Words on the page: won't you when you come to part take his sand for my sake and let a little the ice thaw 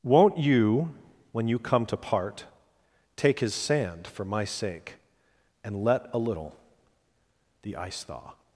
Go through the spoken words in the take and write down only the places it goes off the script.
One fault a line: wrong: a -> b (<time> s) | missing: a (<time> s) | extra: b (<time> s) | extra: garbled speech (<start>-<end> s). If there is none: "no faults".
no faults